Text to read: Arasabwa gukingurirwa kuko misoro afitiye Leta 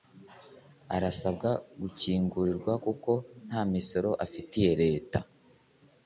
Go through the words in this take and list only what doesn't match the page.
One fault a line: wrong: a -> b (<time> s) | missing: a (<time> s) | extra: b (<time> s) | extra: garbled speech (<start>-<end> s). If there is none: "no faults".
extra: nta (3.5 s)